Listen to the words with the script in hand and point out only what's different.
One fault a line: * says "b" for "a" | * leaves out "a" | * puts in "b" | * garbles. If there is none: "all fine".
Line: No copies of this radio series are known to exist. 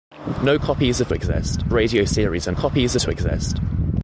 * says "exist" for "this"
* says "copies" for "known"